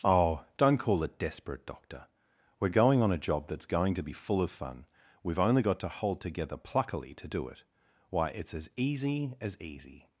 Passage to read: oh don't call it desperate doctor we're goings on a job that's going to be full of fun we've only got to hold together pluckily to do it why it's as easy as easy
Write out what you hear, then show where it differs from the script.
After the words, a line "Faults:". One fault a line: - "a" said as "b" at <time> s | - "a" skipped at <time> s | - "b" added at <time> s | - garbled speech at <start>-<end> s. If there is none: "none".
oh don't call it desperate doctor we're going on a job that's going to be full of fun we've only got to hold together pluckily to do it why it's as easy as easy
Faults:
- "goings" said as "going" at 2.7 s